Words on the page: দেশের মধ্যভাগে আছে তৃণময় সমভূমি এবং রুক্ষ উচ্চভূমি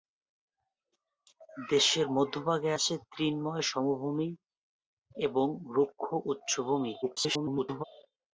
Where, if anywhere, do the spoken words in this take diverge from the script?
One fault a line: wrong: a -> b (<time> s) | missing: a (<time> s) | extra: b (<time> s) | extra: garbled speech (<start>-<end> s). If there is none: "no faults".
extra: garbled speech (7.0-7.8 s)